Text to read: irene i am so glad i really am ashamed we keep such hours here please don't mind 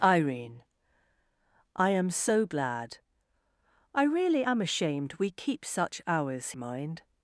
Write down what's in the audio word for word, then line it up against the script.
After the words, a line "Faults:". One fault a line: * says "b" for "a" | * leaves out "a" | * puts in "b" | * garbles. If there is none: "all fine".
irene i am so glad i really am ashamed we keep such hours mind
Faults:
* leaves out "here please don't"